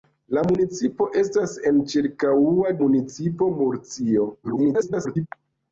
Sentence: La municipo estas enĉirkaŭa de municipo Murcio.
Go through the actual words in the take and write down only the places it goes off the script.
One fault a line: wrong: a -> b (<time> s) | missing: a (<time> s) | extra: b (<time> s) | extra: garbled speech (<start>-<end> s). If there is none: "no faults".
missing: de (2.8 s)
extra: garbled speech (4.4-5.3 s)